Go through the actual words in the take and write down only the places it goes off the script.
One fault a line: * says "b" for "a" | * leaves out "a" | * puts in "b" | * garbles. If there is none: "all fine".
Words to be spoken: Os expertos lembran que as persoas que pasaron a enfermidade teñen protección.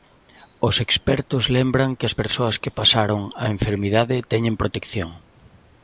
all fine